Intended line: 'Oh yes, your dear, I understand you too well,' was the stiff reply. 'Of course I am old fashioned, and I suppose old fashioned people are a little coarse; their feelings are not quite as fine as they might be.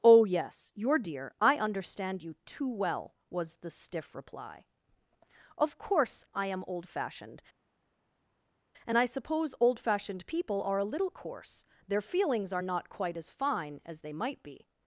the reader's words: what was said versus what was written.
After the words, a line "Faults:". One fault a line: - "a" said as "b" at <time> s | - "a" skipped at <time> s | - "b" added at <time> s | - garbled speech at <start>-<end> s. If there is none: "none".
'Oh yes, your dear, I understand you too well,' was the stiff reply. 'Of course I am old fashioned, and I suppose old fashioned people are a little coarse; their feelings are not quite as fine as they might be.
Faults:
none